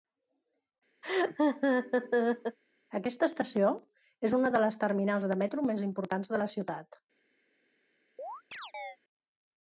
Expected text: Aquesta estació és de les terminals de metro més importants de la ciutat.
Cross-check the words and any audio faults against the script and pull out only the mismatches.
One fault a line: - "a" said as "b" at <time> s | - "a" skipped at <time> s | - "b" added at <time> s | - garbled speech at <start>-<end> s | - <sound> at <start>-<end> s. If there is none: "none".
- laugh at 1.0-2.6 s
- "una" added at 4.4 s
- chirp at 8.2-9.0 s